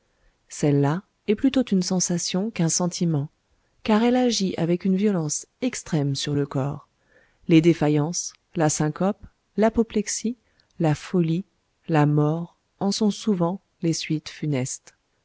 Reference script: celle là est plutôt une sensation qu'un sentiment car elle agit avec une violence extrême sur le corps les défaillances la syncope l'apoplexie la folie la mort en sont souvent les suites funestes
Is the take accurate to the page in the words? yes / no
yes